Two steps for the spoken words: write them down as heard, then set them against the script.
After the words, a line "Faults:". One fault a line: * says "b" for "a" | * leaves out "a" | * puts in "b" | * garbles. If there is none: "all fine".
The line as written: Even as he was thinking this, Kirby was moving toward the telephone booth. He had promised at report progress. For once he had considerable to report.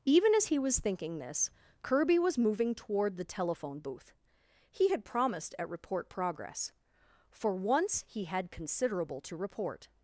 Even as he was thinking this, Kirby was moving toward the telephone booth. He had promised at report progress. For once he had considerable to report.
Faults:
all fine